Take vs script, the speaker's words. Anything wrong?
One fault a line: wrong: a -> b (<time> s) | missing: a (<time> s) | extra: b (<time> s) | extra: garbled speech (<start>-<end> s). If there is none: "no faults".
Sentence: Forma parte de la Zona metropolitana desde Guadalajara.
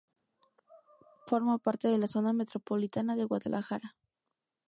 wrong: desde -> de (3.1 s)